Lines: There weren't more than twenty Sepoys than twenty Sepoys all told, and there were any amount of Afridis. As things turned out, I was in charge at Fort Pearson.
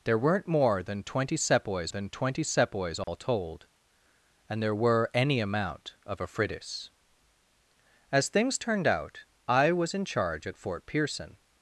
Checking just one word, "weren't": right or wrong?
right